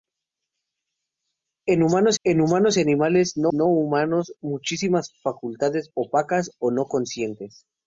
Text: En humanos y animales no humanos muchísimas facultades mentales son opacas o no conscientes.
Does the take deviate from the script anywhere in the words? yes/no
yes